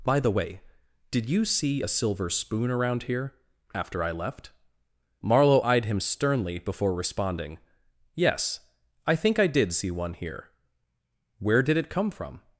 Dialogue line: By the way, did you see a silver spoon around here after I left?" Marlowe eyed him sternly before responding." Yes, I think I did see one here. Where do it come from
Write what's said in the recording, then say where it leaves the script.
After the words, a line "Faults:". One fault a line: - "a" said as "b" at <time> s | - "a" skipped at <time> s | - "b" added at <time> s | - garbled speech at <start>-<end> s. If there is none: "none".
By the way, did you see a silver spoon around here after I left?" Marlowe eyed him sternly before responding." Yes, I think I did see one here. Where did it come from
Faults:
- "do" said as "did" at 11.6 s